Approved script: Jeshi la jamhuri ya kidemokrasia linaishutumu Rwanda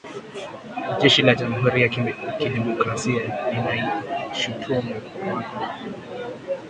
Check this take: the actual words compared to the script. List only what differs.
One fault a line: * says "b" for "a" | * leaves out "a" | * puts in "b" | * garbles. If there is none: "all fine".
all fine